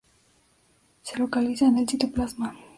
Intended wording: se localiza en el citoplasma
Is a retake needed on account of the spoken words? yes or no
no